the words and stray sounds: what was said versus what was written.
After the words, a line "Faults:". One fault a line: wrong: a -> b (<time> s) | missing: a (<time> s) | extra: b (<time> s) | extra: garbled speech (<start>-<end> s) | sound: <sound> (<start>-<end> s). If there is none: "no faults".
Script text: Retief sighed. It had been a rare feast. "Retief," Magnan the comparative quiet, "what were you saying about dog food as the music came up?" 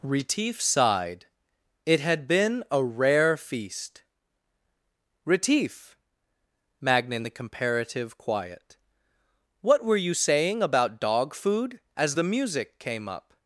Retief sighed. It had been a rare feast. "Retief," Magnan the comparative quiet, "what were you saying about dog food as the music came up?"
Faults:
no faults